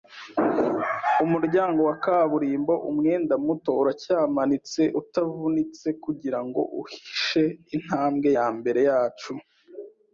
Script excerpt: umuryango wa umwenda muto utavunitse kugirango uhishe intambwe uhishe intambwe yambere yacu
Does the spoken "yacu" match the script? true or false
true